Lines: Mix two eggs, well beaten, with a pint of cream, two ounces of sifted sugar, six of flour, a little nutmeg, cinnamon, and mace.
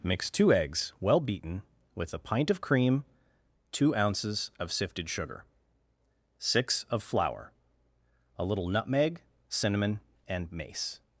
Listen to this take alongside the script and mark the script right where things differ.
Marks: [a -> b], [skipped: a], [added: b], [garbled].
Mix two eggs, well beaten, with a pint of cream, two ounces of sifted sugar, six of flour, a little nutmeg, cinnamon, and mace.